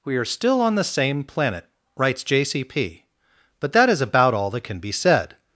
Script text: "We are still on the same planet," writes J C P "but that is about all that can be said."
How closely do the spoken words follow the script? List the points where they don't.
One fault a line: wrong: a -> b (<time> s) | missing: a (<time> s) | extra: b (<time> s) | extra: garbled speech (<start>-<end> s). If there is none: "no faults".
no faults